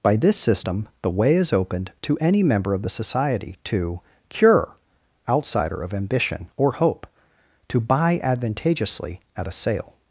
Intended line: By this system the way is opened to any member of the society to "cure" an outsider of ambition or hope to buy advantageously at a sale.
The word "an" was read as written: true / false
false